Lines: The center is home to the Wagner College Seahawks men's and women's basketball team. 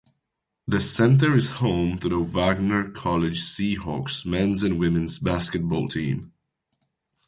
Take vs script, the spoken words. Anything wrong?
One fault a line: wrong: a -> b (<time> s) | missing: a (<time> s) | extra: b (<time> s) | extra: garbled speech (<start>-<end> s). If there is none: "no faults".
no faults